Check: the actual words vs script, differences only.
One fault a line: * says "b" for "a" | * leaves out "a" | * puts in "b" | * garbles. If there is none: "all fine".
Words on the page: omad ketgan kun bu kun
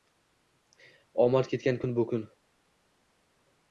all fine